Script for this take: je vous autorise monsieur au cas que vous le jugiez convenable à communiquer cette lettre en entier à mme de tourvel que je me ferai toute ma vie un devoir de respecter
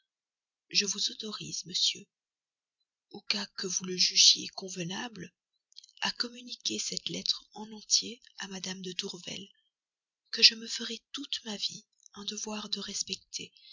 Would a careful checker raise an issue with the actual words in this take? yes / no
no